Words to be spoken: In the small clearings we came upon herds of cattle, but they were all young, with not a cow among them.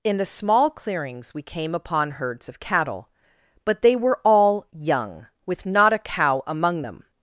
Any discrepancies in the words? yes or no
no